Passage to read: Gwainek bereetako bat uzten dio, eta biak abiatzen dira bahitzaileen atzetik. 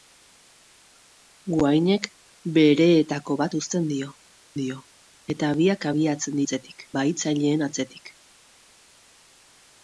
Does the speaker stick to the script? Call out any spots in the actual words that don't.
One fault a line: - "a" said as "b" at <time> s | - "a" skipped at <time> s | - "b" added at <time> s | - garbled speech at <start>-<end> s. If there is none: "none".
- "dio" added at 4.6 s
- "dira" said as "atzetik" at 6.4 s